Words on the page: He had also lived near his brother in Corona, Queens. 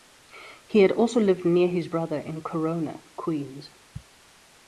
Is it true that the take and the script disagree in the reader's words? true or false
false